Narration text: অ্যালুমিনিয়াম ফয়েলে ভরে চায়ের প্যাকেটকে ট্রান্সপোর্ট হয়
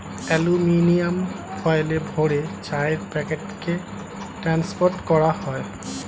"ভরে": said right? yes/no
yes